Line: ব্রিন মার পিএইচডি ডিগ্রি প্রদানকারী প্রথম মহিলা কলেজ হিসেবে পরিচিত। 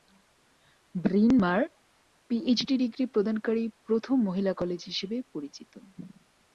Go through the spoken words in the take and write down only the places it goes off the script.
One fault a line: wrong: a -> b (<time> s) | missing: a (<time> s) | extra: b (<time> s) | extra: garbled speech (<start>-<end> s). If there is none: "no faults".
no faults